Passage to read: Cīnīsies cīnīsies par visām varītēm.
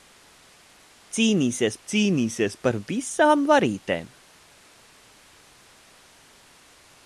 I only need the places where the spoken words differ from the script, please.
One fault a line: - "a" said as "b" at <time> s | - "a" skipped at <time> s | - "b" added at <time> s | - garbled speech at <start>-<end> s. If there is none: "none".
none